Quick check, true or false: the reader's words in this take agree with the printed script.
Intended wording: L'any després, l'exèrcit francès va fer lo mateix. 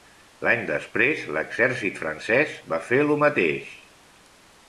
true